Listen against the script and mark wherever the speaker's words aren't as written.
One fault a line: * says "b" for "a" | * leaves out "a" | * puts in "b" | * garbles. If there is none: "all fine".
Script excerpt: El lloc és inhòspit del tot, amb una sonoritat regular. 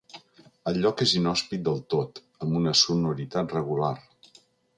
all fine